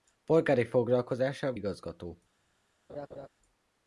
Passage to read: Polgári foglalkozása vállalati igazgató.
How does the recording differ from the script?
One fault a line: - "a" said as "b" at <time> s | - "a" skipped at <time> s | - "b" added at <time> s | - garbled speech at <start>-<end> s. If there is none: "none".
- "vállalati" skipped at 1.6 s